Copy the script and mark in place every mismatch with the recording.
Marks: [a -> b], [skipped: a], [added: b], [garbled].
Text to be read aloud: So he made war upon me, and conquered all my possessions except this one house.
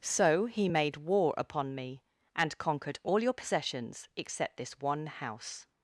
So he made war upon me, and conquered all [my -> your] possessions except this one house.